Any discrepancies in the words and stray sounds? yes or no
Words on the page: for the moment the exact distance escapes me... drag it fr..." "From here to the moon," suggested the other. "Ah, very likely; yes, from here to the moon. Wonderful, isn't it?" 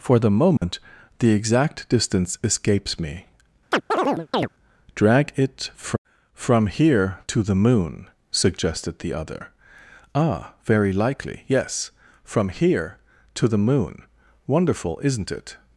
yes